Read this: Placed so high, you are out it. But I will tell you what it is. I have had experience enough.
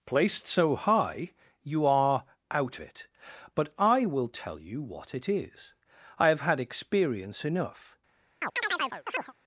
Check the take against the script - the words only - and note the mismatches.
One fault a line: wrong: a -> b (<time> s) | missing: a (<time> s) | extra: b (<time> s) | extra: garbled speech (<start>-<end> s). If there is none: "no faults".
no faults